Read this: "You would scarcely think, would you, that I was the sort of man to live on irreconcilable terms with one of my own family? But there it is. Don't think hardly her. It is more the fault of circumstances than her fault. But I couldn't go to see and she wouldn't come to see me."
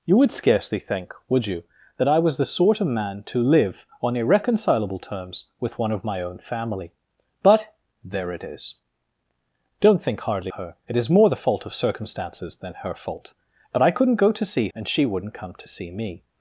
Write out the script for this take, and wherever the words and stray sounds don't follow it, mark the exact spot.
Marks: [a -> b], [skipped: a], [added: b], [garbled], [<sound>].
"You would scarcely think, would you, that I was the sort of man to live on irreconcilable terms with one of my own family? But there it is. Don't think hardly her. It is more the fault of circumstances than her fault. But I couldn't go to see and she wouldn't come to see me."